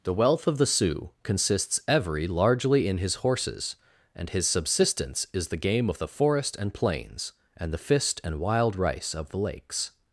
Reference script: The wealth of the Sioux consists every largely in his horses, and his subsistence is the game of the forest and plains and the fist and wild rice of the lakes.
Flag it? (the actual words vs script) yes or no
no